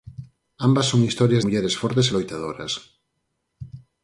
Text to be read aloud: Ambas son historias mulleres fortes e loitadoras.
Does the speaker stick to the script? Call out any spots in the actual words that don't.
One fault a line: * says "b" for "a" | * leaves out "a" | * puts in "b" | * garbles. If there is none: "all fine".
all fine